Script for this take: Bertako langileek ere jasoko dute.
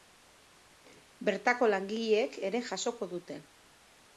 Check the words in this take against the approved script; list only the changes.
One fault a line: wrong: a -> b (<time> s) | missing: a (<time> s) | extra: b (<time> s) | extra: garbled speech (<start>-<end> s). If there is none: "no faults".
no faults